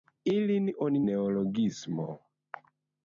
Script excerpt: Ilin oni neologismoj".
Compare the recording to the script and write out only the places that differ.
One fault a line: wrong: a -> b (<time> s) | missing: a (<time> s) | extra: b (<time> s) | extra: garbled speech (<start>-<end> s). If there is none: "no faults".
no faults